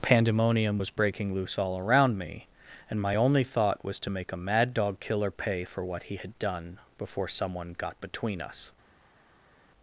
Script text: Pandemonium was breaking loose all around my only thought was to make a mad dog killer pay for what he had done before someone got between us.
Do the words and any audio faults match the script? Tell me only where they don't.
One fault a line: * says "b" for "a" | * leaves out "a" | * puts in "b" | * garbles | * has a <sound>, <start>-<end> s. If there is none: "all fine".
* puts in "me and"